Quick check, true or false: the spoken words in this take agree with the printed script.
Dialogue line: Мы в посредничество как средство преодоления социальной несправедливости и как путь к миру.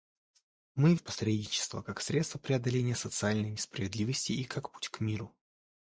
true